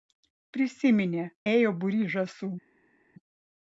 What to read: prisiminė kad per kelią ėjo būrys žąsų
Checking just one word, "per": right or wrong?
wrong